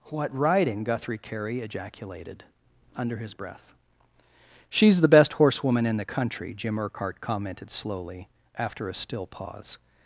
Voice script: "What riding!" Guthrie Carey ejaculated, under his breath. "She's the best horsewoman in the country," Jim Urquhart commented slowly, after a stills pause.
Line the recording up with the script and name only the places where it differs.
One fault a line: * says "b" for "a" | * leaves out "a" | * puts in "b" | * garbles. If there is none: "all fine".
* says "still" for "stills"